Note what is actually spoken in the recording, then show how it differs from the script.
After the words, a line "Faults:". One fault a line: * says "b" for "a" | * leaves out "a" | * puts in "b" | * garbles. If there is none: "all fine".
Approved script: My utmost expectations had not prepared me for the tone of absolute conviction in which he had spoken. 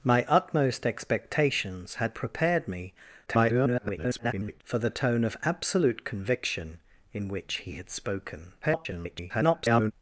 My utmost expectations had prepared me [garbled] for the tone of absolute conviction in which he had spoken. [garbled]
Faults:
* leaves out "not"
* garbles
* garbles